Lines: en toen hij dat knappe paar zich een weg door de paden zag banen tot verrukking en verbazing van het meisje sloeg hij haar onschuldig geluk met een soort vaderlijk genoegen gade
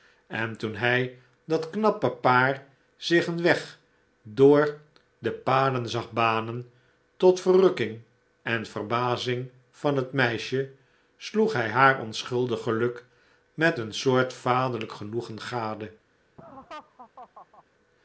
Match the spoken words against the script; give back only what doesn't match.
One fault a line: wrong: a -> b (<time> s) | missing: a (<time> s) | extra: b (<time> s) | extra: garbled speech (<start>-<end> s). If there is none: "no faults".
no faults